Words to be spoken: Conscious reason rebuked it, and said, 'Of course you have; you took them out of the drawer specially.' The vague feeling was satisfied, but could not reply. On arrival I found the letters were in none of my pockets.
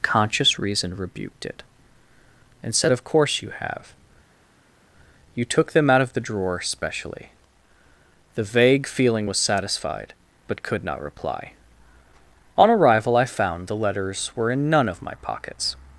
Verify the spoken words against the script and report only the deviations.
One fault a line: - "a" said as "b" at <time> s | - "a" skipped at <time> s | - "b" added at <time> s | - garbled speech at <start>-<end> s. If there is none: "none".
none